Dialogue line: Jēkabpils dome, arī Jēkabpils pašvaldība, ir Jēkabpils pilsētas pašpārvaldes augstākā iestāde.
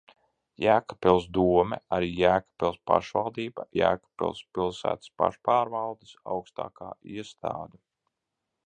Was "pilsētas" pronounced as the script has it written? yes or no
yes